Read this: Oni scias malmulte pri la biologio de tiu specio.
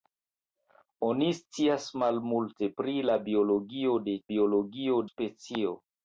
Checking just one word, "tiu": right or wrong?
wrong